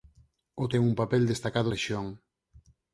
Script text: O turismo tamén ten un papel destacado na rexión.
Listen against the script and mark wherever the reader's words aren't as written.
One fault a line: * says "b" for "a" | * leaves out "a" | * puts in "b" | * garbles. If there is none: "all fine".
* leaves out "turismo tamén"
* leaves out "na"